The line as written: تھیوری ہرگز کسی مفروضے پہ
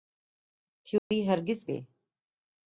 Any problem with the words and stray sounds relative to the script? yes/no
yes